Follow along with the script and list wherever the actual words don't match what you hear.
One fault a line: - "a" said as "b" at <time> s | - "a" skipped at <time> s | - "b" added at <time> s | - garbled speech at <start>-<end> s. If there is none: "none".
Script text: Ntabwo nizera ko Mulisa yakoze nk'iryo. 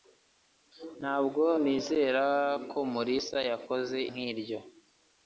none